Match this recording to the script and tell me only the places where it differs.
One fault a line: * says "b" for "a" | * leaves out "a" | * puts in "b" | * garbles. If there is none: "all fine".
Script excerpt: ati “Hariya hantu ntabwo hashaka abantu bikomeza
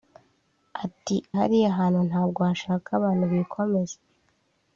all fine